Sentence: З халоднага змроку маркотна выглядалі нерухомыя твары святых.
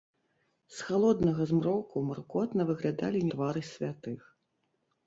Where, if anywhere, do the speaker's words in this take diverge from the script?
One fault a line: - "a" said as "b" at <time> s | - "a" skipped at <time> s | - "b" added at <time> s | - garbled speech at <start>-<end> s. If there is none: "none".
- "нерухомыя" skipped at 3.3 s